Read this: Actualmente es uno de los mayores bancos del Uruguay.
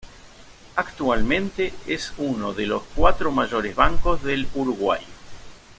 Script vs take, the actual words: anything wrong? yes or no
yes